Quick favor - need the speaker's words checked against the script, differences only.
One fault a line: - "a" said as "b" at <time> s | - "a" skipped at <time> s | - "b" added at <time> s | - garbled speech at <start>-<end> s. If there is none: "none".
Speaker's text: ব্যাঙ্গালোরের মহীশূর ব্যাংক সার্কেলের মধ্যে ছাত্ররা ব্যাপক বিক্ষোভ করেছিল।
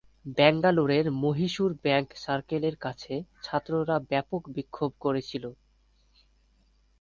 - "মধ্যে" said as "কাছে" at 2.8 s